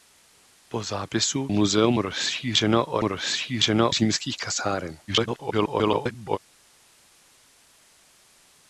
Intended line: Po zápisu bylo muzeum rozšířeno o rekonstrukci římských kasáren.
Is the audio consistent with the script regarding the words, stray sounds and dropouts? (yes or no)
no